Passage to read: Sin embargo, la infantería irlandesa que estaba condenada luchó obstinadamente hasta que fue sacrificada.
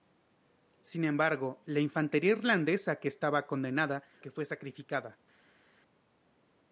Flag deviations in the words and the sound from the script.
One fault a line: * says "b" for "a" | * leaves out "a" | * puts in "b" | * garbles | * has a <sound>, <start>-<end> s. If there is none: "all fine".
* leaves out "luchó obstinadamente hasta"